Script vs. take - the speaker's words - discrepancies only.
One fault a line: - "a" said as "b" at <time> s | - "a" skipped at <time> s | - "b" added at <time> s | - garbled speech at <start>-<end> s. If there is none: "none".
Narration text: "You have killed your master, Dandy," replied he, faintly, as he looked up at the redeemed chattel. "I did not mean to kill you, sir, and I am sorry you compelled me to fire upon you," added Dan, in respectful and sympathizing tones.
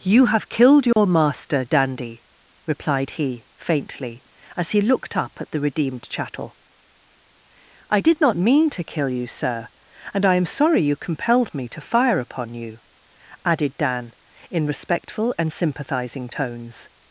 none